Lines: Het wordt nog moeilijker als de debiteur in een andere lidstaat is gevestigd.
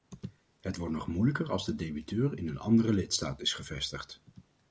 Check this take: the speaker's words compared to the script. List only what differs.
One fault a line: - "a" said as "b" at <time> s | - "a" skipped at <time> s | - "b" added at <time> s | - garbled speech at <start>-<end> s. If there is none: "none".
none